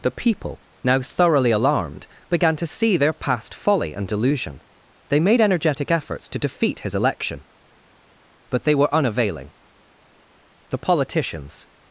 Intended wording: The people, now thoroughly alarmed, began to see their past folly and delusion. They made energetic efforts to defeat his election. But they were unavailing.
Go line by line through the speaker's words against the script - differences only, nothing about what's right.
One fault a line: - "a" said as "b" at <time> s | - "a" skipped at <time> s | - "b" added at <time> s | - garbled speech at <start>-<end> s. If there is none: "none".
- "The politicians" added at 10.7 s